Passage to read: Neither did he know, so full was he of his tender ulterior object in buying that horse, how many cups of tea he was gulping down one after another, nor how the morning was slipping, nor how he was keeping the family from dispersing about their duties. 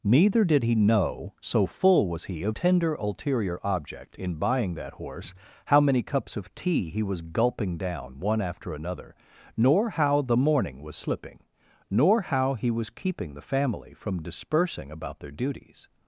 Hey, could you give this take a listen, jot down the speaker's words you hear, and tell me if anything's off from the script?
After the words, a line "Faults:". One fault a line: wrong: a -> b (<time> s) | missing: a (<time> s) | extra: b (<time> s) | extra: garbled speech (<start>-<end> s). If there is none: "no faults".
Neither did he know, so full was he of tender ulterior object in buying that horse, how many cups of tea he was gulping down one after another, nor how the morning was slipping, nor how he was keeping the family from dispersing about their duties.
Faults:
missing: his (2.5 s)